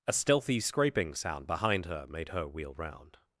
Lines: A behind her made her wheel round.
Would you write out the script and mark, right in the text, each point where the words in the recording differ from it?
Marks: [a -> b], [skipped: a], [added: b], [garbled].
A [added: stealthy scraping sound] behind her made her wheel round.